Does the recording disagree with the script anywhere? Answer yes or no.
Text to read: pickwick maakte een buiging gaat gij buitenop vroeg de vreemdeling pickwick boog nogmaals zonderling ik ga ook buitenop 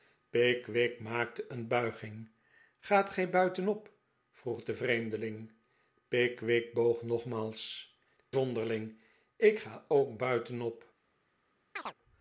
no